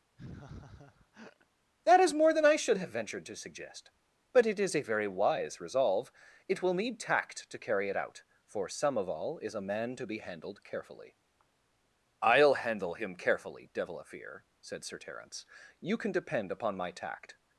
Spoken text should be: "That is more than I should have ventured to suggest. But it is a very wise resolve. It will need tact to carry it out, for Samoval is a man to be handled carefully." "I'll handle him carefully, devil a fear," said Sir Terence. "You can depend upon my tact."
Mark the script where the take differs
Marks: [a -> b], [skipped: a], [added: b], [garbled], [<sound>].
[laugh] "That is more than I should have ventured to suggest. But it is a very wise resolve. It will need tact to carry it out, for Samoval is a man to be handled carefully." "I'll handle him carefully, devil a fear," said Sir Terence. "You can depend upon my tact."